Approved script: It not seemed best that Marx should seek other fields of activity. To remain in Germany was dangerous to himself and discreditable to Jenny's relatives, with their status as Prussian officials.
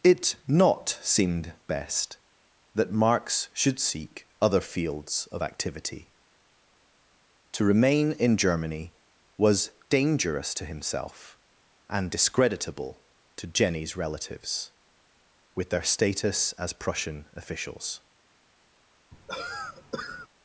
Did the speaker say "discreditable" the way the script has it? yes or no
yes